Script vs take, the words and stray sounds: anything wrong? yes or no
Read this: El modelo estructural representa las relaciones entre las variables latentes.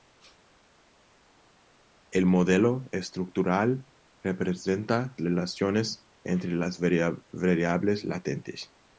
yes